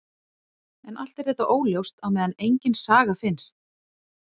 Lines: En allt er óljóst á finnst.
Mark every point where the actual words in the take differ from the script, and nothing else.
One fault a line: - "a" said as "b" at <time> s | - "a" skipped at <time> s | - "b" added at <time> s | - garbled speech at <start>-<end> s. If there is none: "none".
- "þetta" added at 1.3 s
- "meðan engin saga" added at 2.2 s